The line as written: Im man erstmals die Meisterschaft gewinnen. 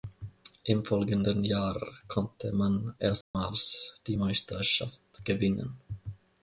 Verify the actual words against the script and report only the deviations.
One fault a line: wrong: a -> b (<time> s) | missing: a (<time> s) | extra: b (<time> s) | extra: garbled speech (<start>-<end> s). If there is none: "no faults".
extra: folgenden Jahr konnte (0.8 s)